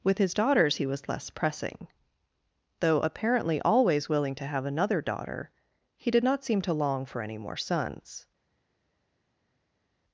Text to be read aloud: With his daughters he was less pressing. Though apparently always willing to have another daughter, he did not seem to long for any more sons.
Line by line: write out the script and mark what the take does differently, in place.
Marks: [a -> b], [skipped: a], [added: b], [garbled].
With his daughters he was less pressing. Though apparently always willing to have another daughter, he did not seem to long for any more sons.